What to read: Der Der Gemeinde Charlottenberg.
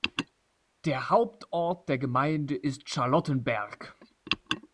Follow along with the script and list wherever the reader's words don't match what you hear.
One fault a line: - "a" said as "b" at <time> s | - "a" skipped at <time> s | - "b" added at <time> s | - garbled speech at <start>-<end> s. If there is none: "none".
- "Hauptort" added at 1.1 s
- "ist" added at 2.5 s